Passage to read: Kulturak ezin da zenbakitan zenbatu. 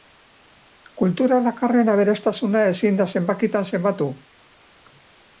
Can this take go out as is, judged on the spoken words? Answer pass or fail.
fail